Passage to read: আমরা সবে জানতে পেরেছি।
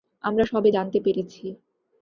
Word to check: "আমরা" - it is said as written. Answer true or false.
true